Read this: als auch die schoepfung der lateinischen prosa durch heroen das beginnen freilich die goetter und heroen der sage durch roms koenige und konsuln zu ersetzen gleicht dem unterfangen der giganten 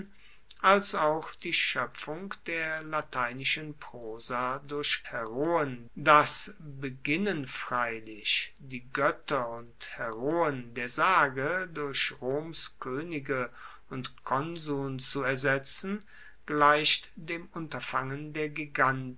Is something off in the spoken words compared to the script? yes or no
no